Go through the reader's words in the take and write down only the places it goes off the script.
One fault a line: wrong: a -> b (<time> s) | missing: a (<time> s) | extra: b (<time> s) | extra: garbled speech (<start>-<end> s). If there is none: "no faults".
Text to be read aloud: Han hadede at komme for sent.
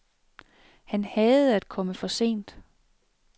no faults